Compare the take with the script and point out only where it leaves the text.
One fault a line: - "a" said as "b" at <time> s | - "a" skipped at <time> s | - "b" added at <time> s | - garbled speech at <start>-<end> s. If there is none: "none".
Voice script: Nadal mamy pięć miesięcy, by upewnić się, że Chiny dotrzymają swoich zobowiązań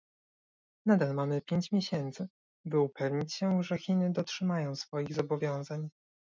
none